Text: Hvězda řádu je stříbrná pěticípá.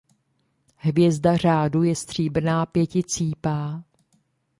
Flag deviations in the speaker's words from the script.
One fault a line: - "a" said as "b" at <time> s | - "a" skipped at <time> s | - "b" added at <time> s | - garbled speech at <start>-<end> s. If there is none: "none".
none